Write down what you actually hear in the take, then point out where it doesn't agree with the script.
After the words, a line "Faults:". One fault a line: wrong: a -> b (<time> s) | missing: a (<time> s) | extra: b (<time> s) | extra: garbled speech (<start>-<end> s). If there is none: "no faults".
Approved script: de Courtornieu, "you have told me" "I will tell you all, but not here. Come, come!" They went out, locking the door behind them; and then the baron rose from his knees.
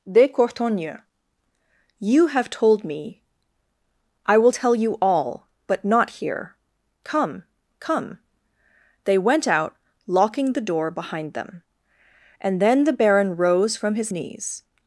de Courtornieu, "you have told me" "I will tell you all, but not here. Come, come!" They went out, locking the door behind them; and then the baron rose from his knees.
Faults:
no faults